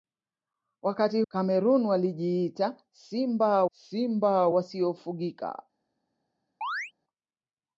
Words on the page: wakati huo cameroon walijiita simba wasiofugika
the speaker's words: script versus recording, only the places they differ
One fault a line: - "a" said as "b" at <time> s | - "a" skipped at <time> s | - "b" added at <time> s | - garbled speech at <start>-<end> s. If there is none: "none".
- "huo" skipped at 1.2 s
- "simba" added at 3.7 s